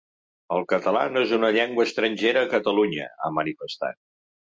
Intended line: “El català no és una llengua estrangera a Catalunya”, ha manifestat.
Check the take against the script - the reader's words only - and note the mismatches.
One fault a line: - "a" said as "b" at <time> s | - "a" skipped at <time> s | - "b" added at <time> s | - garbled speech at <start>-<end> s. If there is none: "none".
none